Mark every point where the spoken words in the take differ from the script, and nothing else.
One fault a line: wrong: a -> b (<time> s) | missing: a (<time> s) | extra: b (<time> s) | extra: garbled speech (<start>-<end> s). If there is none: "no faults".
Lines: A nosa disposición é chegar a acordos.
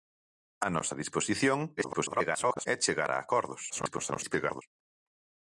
extra: garbled speech (1.8-2.7 s)
extra: garbled speech (3.7-4.6 s)